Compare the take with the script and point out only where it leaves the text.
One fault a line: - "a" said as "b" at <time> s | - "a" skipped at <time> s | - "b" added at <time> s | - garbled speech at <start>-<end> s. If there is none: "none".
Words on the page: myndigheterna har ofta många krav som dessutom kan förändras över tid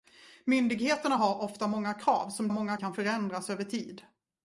- "dessutom" said as "många" at 2.5 s